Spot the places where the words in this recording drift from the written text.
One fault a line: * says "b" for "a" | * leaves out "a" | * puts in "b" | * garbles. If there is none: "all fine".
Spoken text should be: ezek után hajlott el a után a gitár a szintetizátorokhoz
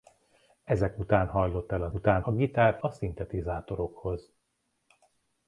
all fine